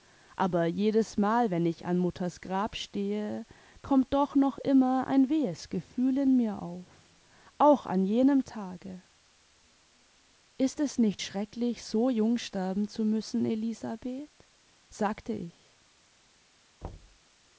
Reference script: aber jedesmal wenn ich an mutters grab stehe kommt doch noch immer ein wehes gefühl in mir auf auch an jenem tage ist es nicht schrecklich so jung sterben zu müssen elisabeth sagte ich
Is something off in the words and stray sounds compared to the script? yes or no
yes